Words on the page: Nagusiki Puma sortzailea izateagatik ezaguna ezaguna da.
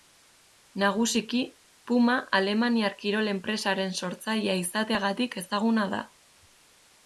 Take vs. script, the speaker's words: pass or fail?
fail